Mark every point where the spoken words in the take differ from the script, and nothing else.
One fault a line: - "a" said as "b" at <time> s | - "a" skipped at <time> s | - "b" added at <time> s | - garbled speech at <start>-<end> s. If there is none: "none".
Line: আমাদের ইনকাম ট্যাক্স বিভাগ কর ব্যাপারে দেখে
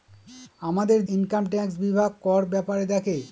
none